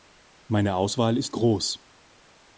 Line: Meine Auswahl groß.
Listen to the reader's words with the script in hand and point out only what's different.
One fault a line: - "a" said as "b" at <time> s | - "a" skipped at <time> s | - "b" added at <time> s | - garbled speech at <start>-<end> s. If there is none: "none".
- "ist" added at 1.1 s